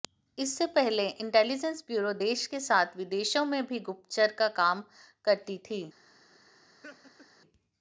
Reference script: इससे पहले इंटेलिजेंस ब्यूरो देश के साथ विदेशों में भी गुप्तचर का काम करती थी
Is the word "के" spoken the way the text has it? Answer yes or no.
yes